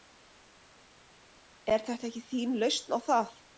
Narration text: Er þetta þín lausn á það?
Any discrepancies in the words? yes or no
yes